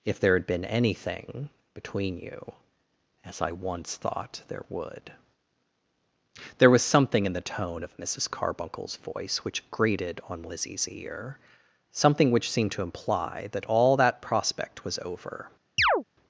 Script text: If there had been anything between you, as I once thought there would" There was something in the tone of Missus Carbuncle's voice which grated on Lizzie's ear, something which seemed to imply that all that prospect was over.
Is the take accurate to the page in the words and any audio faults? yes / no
no